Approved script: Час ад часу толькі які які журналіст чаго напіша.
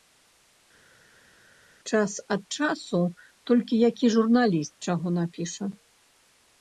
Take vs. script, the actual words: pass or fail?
fail